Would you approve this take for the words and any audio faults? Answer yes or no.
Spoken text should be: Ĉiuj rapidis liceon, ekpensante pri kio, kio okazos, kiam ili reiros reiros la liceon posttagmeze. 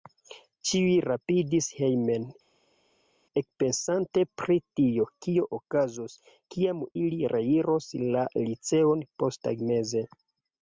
no